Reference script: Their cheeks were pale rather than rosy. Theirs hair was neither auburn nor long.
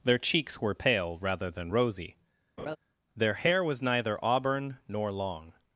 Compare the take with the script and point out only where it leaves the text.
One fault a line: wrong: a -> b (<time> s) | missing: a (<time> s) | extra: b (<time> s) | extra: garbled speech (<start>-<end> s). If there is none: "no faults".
wrong: Theirs -> Their (3.1 s)